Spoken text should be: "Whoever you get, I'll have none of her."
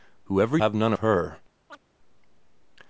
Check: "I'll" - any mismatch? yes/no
yes